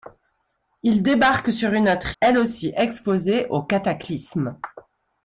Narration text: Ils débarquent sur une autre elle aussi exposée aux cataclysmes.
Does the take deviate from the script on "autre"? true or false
false